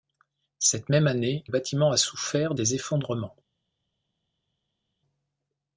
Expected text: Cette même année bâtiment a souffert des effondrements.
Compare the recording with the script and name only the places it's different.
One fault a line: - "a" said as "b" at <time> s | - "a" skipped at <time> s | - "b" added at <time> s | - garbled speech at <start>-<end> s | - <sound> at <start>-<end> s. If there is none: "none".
none